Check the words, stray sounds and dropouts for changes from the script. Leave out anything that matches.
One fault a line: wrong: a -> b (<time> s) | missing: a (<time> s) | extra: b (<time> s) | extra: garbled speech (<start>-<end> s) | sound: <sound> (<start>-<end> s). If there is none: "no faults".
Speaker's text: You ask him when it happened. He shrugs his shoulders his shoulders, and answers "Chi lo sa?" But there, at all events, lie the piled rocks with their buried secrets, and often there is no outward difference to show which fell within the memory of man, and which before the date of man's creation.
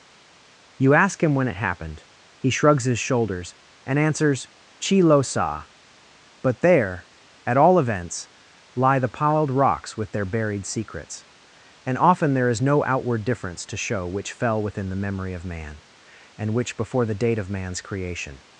missing: his shoulders (3.5 s)